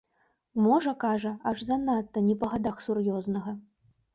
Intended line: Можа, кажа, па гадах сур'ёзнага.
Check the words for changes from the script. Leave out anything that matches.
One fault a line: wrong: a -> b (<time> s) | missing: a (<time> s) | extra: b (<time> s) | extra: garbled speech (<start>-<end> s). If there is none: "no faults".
extra: аж занадта не (1.5 s)